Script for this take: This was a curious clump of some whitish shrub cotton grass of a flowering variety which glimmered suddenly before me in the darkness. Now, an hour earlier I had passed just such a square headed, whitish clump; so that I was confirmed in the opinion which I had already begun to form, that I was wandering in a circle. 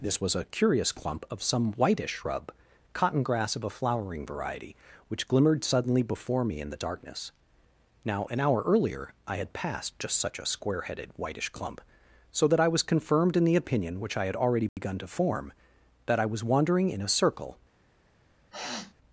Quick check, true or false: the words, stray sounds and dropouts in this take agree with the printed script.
false